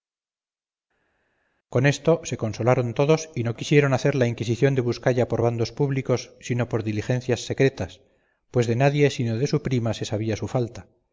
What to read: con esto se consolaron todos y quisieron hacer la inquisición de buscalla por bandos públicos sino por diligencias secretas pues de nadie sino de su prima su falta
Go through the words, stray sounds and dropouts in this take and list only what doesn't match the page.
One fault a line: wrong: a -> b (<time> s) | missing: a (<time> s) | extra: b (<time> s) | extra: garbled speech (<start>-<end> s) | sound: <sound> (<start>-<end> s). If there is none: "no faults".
extra: no (3.4 s)
extra: se sabía (9.9 s)